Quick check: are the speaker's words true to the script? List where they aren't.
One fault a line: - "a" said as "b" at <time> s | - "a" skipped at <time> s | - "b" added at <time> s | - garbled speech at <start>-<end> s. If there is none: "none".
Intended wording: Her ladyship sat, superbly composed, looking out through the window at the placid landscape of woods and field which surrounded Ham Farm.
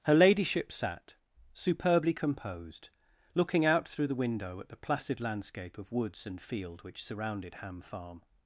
none